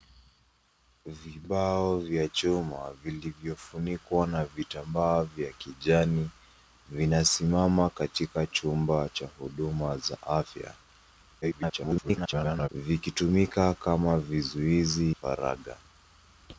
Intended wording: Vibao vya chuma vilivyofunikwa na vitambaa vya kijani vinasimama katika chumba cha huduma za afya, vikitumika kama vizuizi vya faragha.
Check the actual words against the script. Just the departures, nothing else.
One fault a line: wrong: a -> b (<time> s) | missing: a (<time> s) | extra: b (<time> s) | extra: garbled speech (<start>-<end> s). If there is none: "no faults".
extra: garbled speech (11.4-12.7 s)
missing: vya (15.1 s)